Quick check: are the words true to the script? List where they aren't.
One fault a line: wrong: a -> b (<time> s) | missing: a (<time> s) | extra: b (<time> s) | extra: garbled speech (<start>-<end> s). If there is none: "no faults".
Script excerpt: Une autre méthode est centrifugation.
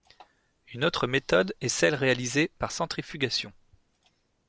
extra: celle réalisée par (1.7 s)